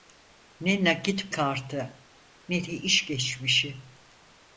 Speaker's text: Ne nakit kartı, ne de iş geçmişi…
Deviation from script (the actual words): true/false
false